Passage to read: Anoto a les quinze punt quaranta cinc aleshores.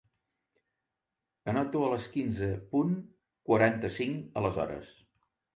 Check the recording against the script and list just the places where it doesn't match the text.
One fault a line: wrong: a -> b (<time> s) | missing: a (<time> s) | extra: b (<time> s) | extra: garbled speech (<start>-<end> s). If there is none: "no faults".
no faults